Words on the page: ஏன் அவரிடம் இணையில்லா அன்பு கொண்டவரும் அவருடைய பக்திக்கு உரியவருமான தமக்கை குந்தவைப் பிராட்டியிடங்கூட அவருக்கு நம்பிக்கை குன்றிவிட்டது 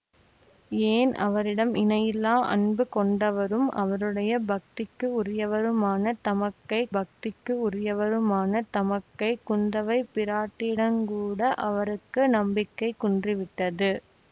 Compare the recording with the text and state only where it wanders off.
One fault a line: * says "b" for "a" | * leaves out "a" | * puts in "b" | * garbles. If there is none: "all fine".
* puts in "பக்திக்கு உரியவருமான தமக்கை"